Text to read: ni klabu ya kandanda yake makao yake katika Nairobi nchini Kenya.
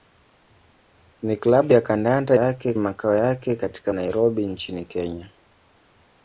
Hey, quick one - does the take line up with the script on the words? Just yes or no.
yes